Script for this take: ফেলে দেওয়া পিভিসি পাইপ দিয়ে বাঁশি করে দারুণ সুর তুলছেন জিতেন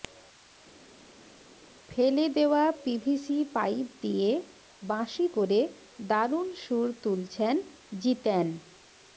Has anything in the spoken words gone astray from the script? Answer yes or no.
no